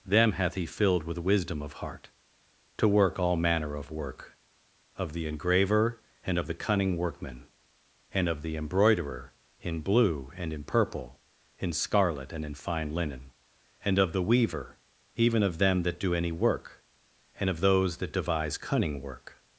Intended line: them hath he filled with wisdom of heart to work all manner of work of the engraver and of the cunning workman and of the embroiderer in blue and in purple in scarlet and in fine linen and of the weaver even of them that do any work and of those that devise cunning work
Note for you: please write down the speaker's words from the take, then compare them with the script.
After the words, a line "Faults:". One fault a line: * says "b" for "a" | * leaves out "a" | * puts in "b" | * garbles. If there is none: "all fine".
them hath he filled with wisdom of heart to work all manner of work of the engraver and of the cunning workman and of the embroiderer in blue and in purple in scarlet and in fine linen and of the weaver even of them that do any work and of those that devise cunning work
Faults:
all fine